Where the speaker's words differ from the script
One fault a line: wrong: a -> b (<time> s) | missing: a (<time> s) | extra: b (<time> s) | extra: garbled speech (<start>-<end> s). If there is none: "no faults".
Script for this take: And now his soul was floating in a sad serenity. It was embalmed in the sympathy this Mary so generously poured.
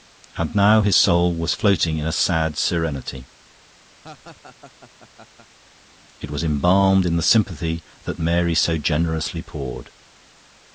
wrong: this -> that (8.0 s)